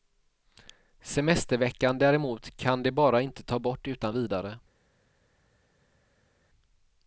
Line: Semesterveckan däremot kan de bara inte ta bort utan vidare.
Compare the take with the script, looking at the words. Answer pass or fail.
pass